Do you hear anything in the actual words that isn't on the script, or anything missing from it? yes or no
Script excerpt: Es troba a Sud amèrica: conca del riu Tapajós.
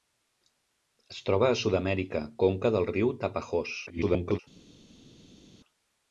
yes